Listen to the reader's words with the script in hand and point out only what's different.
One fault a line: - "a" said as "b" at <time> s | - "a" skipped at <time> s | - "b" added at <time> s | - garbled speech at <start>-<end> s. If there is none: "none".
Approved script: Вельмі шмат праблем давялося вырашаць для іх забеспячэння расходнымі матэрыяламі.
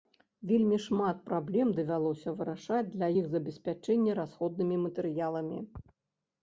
none